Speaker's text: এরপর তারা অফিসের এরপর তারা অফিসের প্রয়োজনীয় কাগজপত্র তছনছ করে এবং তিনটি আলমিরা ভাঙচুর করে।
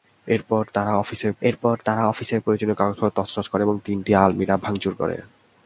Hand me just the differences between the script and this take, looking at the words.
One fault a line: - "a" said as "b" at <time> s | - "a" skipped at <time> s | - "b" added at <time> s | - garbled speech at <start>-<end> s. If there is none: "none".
none